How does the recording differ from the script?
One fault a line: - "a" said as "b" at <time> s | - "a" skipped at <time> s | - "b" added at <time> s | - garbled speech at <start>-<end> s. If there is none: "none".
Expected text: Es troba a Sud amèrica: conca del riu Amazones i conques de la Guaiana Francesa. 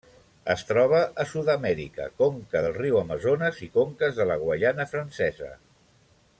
none